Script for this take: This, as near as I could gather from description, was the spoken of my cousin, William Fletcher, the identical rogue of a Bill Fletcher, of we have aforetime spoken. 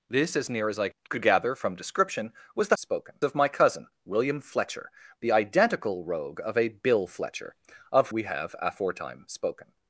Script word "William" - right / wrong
right